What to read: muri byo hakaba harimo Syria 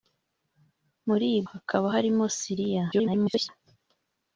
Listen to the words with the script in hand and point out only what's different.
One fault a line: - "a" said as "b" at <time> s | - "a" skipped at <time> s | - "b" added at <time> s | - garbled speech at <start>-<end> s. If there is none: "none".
- "byo" skipped at 1.3 s
- garbled speech at 2.9-3.5 s